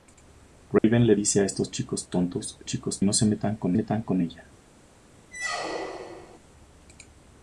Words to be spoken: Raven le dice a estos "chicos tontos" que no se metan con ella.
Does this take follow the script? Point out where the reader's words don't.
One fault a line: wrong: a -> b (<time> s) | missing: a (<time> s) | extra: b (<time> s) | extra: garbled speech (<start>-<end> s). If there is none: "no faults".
wrong: que -> chicos (2.7 s)
extra: metan con (3.7 s)